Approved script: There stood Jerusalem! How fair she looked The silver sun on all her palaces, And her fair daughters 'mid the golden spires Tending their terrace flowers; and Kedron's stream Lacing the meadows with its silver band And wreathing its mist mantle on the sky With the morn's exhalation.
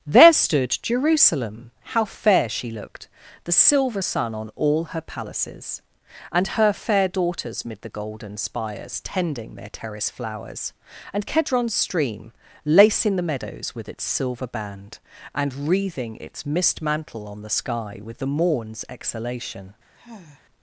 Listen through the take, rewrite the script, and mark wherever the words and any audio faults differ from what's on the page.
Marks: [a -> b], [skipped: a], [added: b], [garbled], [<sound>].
There stood Jerusalem! How fair she looked The silver sun on all her palaces, And her fair daughters 'mid the golden spires Tending their terrace flowers; and Kedron's stream Lacing the meadows with its silver band And wreathing its mist mantle on the sky With the morn's exhalation. [sigh]